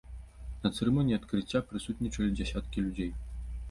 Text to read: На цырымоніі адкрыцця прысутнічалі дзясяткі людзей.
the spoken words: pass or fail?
pass